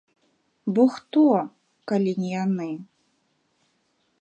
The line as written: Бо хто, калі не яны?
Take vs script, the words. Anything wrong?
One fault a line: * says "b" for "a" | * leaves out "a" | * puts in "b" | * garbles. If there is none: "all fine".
all fine